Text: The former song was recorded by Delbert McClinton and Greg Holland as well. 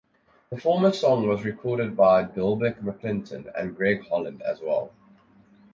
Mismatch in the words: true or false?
false